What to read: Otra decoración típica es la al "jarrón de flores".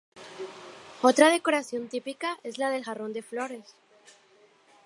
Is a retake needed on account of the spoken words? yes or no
yes